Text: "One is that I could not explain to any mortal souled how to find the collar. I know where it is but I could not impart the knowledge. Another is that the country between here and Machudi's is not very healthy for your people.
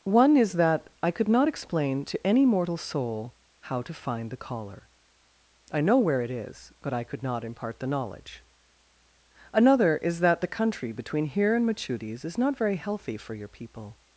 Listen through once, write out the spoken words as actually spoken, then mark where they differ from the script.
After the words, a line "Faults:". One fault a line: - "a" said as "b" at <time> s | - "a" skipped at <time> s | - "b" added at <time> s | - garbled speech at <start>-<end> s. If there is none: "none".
"One is that I could not explain to any mortal soul how to find the collar. I know where it is but I could not impart the knowledge. Another is that the country between here and Machudi's is not very healthy for your people.
Faults:
- "souled" said as "soul" at 2.8 s